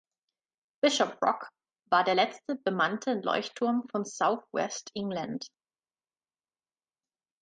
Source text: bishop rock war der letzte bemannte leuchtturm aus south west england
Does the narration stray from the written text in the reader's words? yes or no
yes